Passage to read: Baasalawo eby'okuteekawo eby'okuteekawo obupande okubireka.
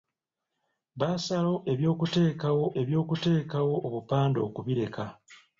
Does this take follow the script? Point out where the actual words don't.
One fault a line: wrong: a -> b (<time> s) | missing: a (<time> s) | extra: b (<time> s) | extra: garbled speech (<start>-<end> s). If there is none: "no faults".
no faults